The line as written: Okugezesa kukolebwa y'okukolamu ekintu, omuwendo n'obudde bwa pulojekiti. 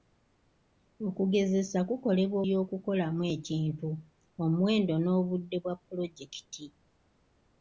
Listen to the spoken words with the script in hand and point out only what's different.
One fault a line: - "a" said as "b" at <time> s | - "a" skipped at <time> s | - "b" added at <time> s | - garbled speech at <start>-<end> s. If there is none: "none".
none